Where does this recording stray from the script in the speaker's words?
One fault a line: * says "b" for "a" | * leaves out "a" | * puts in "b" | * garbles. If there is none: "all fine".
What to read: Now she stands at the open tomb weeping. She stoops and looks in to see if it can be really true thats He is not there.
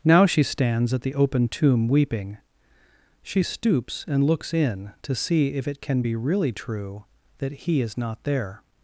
* says "that" for "thats"